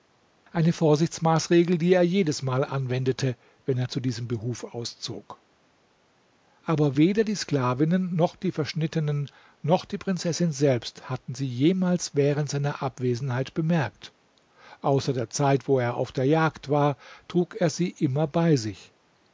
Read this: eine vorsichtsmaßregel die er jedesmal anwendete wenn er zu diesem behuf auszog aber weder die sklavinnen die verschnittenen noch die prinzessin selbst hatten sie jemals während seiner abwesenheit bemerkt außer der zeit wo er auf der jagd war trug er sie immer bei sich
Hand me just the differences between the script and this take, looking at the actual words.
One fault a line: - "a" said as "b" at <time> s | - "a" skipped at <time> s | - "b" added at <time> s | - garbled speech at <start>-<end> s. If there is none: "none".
- "noch" added at 8.1 s